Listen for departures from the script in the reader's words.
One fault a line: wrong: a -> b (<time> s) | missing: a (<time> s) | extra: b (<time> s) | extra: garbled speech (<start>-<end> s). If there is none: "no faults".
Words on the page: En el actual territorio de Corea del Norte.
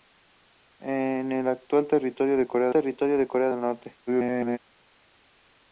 extra: territorio de Corea (2.7 s)
extra: garbled speech (4.1-4.6 s)